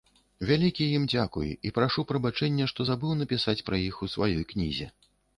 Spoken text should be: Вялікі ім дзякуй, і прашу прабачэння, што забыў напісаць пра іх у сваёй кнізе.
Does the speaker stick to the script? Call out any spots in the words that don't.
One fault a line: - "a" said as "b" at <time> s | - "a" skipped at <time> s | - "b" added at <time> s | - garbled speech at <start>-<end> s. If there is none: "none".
none